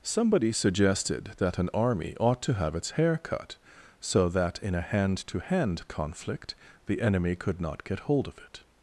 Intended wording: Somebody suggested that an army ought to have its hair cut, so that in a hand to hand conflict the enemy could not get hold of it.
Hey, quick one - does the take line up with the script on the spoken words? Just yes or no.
yes